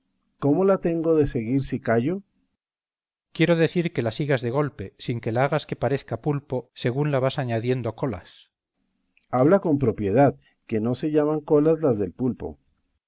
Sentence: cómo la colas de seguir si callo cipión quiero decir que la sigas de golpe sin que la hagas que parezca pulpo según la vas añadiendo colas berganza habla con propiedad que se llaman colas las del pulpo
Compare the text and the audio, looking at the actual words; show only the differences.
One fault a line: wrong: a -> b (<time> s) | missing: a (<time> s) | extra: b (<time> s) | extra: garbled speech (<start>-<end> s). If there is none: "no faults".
wrong: colas -> tengo (0.8 s)
extra: no (10.8 s)